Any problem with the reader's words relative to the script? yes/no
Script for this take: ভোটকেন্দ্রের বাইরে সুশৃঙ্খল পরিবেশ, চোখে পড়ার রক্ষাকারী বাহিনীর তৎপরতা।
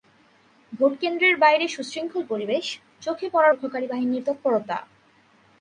no